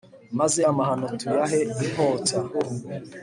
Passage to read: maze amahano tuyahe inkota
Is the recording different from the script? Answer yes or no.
no